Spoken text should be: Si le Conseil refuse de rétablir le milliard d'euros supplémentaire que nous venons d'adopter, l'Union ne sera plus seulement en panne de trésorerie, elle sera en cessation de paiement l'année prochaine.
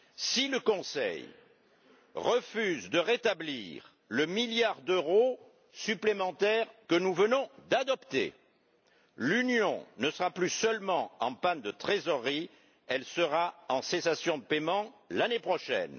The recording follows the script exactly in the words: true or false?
true